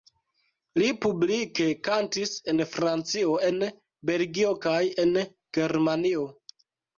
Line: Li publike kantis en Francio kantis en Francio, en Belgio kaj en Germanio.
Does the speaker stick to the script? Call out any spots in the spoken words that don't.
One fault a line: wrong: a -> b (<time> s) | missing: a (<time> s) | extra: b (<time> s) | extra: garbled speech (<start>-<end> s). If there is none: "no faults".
missing: kantis en Francio (3.4 s)